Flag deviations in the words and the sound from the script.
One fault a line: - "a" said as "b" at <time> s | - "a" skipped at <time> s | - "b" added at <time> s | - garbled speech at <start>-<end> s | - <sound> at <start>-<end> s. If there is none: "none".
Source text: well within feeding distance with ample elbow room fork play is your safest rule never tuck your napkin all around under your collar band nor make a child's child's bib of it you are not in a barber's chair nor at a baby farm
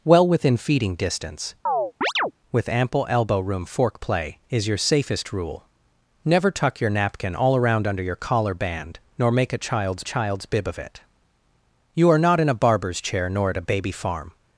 - chirp at 1.7-2.3 s